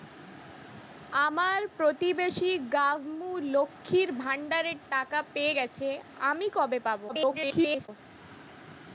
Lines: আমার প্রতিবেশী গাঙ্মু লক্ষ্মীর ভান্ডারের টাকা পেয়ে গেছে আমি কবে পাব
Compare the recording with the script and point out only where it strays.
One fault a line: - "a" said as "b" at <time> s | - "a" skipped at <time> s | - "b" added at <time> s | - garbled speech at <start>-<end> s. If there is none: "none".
- garbled speech at 7.1-7.9 s